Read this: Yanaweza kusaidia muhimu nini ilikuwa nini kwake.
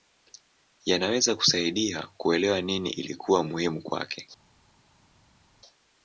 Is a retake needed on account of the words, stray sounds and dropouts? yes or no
yes